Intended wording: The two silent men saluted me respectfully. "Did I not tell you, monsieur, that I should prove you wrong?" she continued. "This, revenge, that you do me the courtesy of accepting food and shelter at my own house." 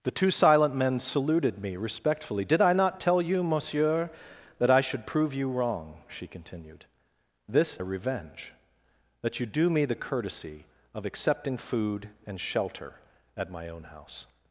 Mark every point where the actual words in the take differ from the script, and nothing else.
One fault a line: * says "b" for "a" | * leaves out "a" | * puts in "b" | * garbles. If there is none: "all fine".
all fine